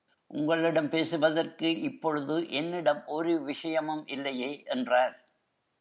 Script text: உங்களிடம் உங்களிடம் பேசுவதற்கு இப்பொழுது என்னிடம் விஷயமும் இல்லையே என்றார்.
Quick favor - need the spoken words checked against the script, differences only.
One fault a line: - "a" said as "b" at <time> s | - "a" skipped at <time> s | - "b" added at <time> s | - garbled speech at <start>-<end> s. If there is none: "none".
- "உங்களிடம்" skipped at 0.9 s
- "ஒரு" added at 3.1 s